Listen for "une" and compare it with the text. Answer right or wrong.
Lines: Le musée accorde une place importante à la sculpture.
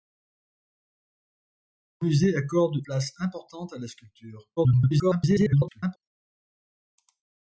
wrong